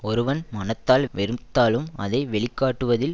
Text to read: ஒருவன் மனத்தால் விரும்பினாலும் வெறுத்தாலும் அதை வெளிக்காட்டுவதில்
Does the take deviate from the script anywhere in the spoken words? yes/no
yes